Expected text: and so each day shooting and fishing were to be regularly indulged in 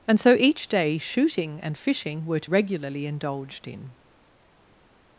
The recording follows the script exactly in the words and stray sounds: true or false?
false